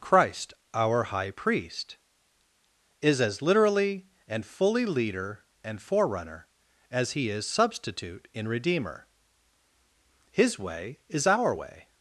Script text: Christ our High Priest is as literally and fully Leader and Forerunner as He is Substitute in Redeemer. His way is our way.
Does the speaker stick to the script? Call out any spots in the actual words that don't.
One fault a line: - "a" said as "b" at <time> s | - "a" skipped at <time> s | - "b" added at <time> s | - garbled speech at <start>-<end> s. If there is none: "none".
none